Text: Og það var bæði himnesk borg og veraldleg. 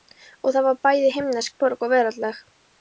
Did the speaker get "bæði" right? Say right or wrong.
right